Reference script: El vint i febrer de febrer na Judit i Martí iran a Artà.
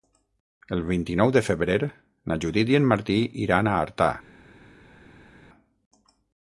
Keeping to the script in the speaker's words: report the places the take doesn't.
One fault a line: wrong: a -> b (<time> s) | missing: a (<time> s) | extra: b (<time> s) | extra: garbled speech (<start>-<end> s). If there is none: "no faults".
wrong: febrer -> nou (1.2 s)
extra: en (2.8 s)